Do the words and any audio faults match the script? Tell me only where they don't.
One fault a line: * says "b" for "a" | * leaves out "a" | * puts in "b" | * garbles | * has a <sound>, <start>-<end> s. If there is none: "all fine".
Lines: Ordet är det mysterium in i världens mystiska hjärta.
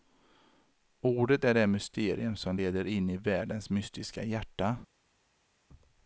* puts in "som leder"